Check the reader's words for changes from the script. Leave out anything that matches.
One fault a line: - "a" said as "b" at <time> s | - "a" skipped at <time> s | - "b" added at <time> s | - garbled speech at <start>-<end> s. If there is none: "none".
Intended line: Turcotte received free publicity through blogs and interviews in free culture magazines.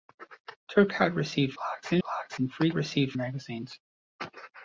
- "free publicity through" skipped at 1.5 s
- "interviews" said as "blogs" at 2.0 s
- "culture" said as "received" at 2.7 s